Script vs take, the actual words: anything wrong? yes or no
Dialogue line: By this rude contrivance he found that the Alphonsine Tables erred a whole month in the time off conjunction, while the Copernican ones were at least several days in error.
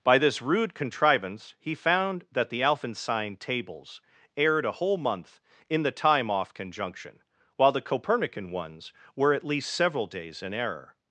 no